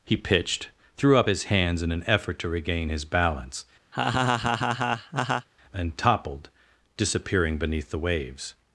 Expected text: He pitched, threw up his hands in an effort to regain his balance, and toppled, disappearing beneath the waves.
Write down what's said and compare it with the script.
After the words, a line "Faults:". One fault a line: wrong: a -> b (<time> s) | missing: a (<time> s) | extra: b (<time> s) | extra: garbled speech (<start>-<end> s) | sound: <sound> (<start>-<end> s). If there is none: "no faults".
He pitched, threw up his hands in an effort to regain his balance, and toppled, disappearing beneath the waves.
Faults:
sound: laugh (3.9-5.5 s)